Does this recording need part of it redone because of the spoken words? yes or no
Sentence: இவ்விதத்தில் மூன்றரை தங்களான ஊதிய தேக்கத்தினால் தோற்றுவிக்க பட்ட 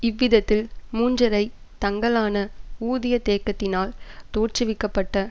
no